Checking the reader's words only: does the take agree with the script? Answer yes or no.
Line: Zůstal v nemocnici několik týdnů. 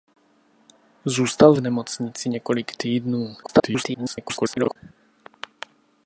no